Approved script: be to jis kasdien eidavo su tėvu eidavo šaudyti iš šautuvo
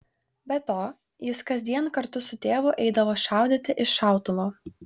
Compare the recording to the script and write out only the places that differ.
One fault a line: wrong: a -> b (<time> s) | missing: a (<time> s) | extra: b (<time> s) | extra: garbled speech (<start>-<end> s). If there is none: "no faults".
wrong: eidavo -> kartu (2.0 s)